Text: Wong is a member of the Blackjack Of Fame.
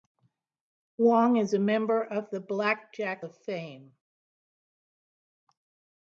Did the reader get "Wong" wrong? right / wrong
right